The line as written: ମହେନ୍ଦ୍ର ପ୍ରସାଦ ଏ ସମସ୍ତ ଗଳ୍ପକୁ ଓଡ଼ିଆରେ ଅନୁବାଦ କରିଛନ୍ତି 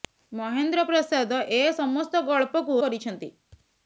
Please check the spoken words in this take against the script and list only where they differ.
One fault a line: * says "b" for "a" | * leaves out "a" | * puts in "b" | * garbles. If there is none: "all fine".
* leaves out "ଓଡ଼ିଆରେ ଅନୁବାଦ"